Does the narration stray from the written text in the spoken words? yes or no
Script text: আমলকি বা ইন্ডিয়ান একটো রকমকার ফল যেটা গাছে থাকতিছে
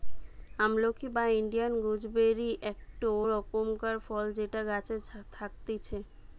yes